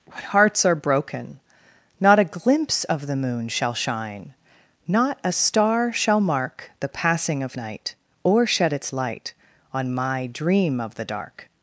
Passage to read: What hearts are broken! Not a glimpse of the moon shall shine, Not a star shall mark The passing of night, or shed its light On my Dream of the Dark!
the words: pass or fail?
pass